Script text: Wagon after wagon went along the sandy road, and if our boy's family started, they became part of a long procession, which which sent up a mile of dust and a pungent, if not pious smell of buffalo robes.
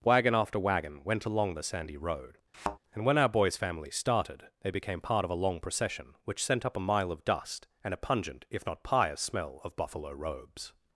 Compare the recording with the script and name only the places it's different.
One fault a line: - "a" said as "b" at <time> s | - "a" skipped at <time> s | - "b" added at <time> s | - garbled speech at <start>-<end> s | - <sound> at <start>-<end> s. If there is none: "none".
- thud at 2.5-2.8 s
- "if" said as "when" at 3.1 s
- "which" skipped at 6.4 s